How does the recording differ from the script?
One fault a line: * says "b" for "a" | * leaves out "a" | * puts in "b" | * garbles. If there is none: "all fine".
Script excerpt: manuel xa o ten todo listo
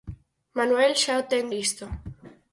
* leaves out "todo"